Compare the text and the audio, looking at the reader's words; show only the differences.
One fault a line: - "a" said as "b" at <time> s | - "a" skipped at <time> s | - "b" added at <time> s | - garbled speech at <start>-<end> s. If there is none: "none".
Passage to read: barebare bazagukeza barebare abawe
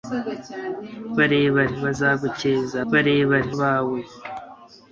none